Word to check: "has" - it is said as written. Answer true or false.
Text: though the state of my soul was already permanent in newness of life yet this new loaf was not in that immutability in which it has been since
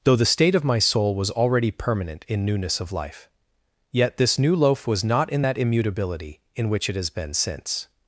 true